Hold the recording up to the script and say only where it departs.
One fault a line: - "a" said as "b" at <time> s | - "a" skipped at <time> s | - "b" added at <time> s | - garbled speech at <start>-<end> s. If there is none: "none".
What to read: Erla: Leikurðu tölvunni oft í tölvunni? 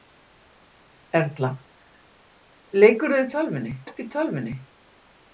none